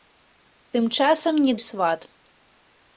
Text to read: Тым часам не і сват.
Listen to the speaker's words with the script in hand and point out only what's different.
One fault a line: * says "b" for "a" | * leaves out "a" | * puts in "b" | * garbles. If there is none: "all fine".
all fine